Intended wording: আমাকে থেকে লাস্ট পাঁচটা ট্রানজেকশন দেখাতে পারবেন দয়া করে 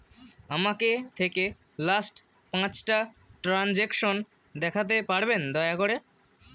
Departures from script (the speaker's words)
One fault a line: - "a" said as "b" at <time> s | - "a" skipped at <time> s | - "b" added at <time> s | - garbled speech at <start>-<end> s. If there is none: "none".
none